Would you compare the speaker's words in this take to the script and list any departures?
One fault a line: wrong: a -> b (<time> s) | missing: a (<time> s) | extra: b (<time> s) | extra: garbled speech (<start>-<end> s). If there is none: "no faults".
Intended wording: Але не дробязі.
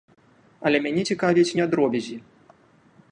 extra: мяне цікавяць (0.8 s)